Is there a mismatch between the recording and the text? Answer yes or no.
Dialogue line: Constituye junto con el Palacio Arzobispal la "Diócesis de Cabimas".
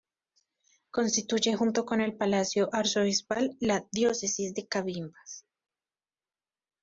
no